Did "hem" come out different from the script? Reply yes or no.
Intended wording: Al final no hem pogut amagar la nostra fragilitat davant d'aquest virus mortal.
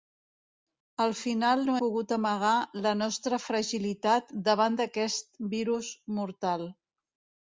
yes